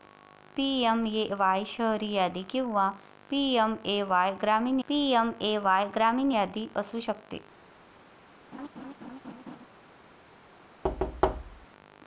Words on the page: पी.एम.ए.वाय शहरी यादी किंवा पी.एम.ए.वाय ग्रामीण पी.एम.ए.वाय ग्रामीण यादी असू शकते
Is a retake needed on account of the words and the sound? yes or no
yes